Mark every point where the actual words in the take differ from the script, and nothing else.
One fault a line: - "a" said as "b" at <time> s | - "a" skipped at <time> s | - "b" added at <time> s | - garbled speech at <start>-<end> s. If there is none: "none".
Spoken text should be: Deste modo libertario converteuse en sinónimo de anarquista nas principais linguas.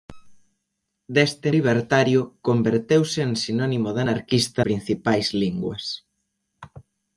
- "modo" skipped at 1.5 s
- "nas" skipped at 4.6 s